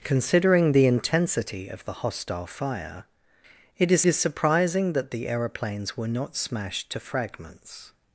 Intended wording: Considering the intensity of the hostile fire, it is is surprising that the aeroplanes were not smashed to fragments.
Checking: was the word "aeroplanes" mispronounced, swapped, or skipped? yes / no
no